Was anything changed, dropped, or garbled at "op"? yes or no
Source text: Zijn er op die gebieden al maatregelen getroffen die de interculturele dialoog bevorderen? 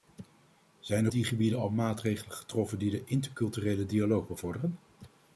yes